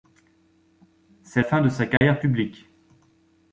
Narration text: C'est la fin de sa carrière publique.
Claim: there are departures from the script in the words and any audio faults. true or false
true